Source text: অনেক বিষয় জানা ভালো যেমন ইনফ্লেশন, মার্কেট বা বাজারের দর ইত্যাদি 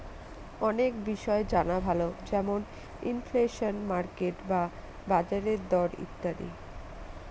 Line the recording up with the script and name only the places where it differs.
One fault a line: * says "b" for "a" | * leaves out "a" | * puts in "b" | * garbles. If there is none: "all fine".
all fine